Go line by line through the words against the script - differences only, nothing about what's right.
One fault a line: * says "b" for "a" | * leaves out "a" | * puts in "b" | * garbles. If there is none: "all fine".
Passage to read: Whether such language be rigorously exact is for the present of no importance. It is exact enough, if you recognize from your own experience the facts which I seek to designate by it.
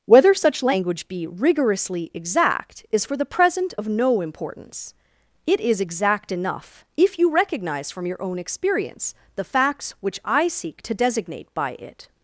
all fine